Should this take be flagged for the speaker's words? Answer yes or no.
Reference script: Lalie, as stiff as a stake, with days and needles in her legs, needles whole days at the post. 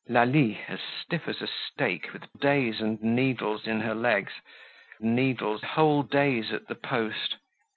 no